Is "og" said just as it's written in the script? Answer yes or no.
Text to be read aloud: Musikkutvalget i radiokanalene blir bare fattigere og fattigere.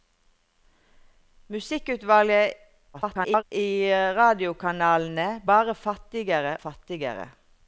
no